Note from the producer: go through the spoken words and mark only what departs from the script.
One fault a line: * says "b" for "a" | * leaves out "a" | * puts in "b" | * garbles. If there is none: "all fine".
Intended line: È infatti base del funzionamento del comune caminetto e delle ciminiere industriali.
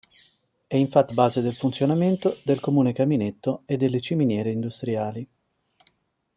all fine